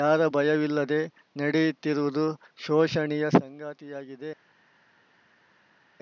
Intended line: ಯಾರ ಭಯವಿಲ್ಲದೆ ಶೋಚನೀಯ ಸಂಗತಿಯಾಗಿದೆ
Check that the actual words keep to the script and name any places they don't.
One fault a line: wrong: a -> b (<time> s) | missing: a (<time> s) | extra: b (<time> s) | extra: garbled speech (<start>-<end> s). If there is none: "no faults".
extra: ನಡೆಯುತ್ತಿರುವುದು (1.4 s)